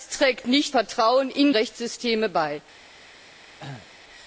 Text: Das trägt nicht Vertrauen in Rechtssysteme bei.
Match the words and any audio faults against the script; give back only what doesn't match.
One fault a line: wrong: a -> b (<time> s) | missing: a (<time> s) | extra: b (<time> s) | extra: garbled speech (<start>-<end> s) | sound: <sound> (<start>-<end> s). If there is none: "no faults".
sound: cough (3.6-3.9 s)